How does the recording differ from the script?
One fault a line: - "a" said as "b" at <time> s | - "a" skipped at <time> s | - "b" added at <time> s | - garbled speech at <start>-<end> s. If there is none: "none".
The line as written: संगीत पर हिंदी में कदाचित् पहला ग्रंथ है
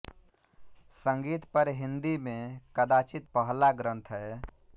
none